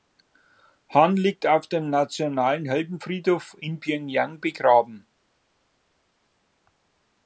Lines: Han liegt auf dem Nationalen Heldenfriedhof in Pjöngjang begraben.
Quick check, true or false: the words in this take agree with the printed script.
true